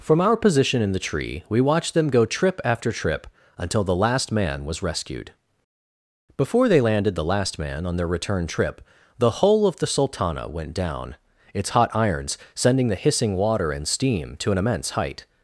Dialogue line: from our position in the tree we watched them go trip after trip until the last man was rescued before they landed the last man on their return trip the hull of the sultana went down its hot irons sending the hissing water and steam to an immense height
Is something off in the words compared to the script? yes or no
no